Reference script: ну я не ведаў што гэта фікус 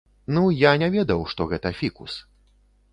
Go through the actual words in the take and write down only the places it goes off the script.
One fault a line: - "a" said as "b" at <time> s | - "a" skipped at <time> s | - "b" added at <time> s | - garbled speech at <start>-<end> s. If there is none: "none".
none